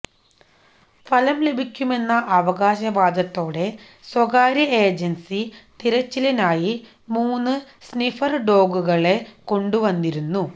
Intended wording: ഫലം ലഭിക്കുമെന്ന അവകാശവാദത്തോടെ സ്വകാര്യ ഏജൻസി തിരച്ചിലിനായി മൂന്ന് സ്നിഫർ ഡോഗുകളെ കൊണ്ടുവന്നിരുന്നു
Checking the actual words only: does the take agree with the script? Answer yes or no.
yes